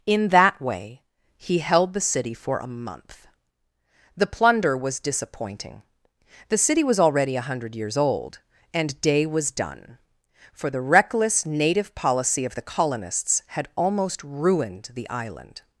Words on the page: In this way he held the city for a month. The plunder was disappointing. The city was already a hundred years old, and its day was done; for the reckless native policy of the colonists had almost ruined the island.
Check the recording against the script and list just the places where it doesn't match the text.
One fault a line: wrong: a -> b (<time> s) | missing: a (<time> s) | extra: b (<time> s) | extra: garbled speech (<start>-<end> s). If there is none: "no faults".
wrong: this -> that (0.3 s)
missing: its (9.0 s)